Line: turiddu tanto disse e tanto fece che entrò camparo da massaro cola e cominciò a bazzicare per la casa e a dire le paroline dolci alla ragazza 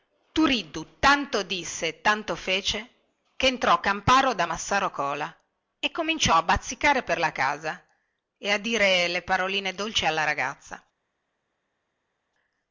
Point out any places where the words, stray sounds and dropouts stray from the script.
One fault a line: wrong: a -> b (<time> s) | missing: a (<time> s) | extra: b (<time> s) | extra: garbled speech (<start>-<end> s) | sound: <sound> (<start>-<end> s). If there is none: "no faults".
no faults